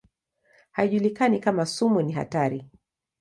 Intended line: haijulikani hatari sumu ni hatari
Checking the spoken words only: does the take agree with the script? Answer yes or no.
no